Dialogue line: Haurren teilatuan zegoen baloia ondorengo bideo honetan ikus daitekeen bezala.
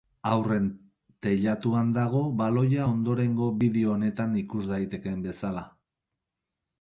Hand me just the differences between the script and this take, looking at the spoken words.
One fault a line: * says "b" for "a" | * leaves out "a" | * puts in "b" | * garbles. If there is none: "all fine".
* says "dago" for "zegoen"